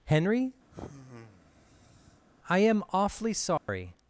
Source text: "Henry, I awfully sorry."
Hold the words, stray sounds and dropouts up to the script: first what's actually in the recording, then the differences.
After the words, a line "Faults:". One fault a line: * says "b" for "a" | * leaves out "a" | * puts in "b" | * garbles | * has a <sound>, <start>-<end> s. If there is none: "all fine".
"Henry, I am awfully sorry."
Faults:
* has a sigh, 0.7-2.2 s
* puts in "am"
* has a dropout, 3.6-3.7 s